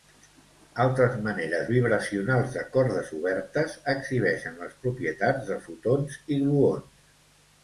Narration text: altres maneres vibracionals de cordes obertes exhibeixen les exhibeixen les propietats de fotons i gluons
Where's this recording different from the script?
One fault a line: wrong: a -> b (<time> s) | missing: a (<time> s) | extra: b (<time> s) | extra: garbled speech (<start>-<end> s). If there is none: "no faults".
missing: exhibeixen les (4.8 s)